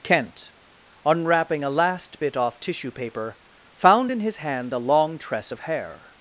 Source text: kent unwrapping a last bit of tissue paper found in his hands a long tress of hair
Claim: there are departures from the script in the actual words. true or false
true